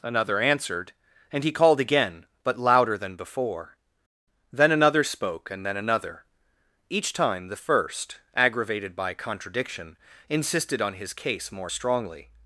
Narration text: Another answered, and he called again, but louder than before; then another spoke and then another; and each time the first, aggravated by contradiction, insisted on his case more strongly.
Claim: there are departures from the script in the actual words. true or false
true